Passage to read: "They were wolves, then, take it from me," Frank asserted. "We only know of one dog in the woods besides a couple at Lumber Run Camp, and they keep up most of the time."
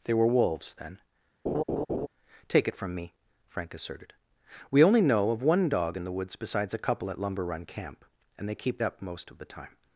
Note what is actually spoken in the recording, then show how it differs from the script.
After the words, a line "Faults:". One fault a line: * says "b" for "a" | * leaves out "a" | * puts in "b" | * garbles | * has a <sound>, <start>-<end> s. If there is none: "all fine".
"They were wolves, then, take it from me," Frank asserted. "We only know of one dog in the woods besides a couple at Lumber Run Camp, and they keep up most of the time."
Faults:
* has a laugh, 1.5-2.1 s